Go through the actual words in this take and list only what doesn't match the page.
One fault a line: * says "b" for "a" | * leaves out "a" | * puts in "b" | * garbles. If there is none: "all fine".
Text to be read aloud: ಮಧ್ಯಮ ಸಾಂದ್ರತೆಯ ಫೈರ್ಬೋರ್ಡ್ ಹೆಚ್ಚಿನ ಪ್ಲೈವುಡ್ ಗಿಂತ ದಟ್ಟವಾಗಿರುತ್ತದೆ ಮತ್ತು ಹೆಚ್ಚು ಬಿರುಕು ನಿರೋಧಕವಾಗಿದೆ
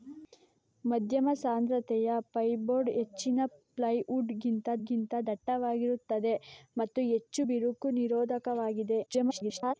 * puts in "ಗಿಂತ"
* garbles